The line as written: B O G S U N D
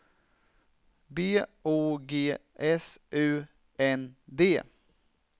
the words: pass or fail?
pass